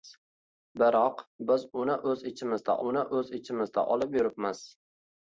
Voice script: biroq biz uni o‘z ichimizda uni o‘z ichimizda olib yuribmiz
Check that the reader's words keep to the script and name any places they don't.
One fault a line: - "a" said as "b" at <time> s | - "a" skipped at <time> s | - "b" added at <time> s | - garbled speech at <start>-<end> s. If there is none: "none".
none